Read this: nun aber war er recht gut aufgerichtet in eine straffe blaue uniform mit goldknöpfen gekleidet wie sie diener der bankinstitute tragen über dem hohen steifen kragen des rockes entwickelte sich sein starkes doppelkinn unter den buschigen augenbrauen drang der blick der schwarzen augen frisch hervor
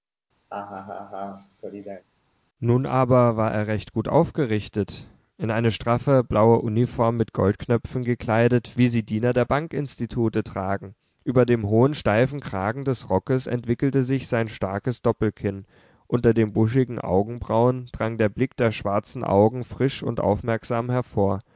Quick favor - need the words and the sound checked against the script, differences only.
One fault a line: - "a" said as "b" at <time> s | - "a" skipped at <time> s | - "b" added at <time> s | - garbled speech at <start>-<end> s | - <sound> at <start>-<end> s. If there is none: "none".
- laugh at 0.5-2.0 s
- "und aufmerksam" added at 20.0 s